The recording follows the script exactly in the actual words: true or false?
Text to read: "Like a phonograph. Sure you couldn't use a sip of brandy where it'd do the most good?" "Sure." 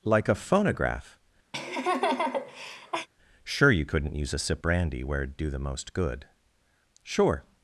false